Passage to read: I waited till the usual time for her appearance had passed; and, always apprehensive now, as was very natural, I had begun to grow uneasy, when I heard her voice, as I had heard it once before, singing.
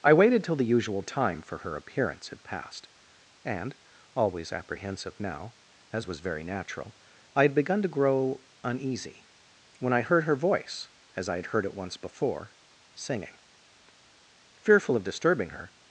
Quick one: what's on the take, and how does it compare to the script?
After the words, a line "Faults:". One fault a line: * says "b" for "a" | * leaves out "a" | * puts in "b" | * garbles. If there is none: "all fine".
I waited till the usual time for her appearance had passed; and, always apprehensive now, as was very natural, I had begun to grow uneasy, when I heard her voice, as I had heard it once before, singing. Fearful of disturbing her
Faults:
* puts in "Fearful of disturbing her"